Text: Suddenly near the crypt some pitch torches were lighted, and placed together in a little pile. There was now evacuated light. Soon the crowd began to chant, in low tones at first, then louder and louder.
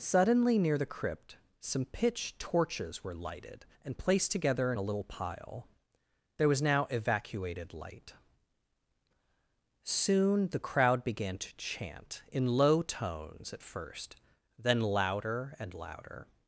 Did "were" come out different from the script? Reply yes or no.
no